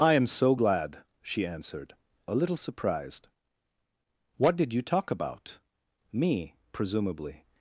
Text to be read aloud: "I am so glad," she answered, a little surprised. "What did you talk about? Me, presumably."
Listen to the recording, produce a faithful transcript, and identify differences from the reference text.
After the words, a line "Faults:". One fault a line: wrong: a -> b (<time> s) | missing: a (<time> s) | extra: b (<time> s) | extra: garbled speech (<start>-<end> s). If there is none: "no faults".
"I am so glad," she answered, a little surprised. "What did you talk about? Me, presumably."
Faults:
no faults